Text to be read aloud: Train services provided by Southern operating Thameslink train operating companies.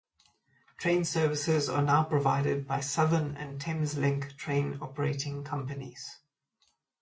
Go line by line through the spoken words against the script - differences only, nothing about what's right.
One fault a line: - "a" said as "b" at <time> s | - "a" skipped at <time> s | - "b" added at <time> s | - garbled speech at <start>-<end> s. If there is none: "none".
- "are now" added at 1.7 s
- "operating" said as "and" at 3.4 s